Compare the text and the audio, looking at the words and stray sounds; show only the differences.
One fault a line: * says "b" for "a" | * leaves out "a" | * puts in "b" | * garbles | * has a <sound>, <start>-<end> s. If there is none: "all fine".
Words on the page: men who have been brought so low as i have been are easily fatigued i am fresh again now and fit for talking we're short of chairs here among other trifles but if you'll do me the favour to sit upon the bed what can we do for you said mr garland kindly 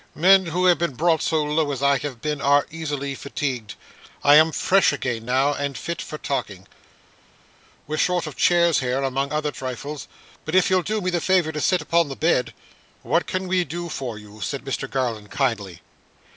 all fine